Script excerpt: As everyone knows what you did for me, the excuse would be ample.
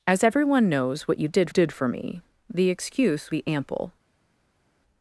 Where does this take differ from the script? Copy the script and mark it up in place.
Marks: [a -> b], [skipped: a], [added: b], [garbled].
As everyone knows what you did [added: did] for me, the excuse [skipped: would] be ample.